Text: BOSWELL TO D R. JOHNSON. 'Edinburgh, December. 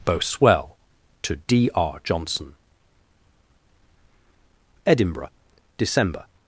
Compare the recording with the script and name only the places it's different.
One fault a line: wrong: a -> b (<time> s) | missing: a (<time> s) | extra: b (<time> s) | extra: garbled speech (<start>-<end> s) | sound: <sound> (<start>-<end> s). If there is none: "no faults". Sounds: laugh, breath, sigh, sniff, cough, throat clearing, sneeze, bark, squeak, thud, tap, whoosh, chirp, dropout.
no faults